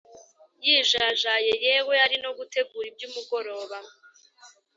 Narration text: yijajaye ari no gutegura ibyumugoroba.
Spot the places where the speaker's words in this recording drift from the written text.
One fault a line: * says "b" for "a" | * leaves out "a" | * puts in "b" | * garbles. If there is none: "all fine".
* puts in "yewe"